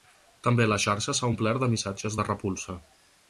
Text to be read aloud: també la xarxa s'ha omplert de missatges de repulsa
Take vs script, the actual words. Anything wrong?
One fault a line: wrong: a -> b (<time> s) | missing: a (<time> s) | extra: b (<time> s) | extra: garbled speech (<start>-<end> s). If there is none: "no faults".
no faults